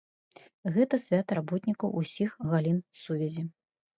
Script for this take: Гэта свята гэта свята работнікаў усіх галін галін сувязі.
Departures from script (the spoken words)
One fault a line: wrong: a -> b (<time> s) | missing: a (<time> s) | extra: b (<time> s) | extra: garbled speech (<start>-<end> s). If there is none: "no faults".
missing: гэта свята (1.4 s)
missing: галін (2.8 s)